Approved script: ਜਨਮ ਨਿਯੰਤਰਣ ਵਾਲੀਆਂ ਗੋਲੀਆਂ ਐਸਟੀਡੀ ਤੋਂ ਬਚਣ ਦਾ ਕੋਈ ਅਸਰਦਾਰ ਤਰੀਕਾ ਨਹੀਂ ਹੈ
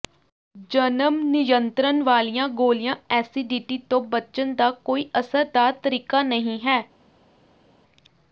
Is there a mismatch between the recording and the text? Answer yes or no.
no